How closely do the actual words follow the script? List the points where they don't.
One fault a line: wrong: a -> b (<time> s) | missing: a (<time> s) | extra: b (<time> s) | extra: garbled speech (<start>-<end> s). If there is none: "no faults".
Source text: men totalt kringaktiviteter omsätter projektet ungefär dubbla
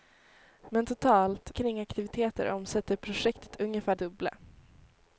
no faults